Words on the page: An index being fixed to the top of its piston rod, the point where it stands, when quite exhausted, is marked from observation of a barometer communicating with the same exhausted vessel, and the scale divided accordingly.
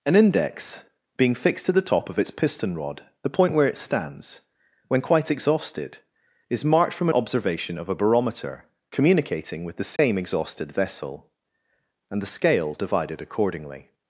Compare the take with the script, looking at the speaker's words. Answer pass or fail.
pass